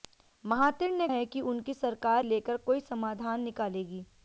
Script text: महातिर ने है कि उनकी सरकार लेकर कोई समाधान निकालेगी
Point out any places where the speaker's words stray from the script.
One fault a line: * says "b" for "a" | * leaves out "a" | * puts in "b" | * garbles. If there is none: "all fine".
all fine